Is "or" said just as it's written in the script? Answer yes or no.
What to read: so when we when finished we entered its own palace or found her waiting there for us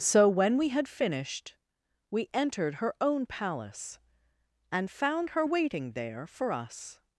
no